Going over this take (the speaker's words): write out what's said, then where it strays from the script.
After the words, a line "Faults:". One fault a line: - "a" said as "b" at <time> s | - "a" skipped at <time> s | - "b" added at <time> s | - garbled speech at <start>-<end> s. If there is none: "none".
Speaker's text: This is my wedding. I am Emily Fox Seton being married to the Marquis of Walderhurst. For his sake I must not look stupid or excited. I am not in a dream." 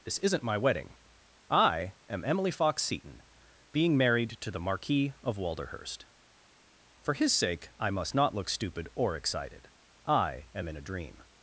This isn't my wedding. I am Emily Fox Seton being married to the Marquis of Walderhurst. For his sake I must not look stupid or excited. I am in a dream."
Faults:
- "is" said as "isn't" at 0.2 s
- "not" skipped at 10.7 s